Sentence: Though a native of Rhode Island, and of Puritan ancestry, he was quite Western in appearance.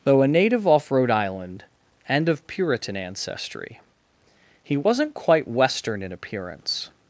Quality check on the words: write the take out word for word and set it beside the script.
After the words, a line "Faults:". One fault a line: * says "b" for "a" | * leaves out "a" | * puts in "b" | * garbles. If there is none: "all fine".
Though a native off Rhode Island, and of Puritan ancestry, he wasn't quite Western in appearance.
Faults:
* says "off" for "of"
* says "wasn't" for "was"